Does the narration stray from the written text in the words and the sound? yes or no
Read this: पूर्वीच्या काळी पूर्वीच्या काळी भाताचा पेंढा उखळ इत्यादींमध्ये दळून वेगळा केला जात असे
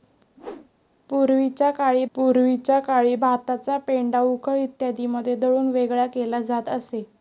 yes